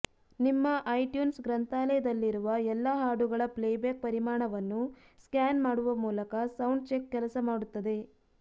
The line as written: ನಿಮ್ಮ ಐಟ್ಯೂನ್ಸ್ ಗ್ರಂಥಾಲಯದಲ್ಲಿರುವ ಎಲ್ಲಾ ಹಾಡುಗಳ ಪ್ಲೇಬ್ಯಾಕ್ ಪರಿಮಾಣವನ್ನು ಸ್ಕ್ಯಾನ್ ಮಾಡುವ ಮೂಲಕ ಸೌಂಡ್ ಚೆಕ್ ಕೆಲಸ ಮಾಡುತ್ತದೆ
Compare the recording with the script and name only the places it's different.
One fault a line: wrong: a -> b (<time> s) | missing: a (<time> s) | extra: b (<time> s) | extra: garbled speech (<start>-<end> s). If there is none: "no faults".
no faults